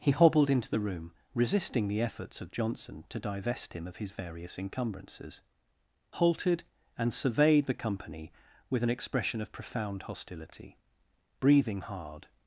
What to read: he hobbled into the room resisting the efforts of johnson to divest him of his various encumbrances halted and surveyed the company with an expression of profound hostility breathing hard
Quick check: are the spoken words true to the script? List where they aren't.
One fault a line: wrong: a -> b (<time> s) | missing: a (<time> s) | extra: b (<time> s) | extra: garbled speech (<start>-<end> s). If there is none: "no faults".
no faults